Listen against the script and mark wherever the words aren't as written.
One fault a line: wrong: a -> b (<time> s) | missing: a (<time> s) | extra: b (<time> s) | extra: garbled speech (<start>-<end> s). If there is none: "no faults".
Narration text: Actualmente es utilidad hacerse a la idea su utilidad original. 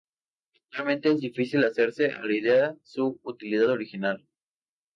wrong: utilidad -> difícil (1.2 s)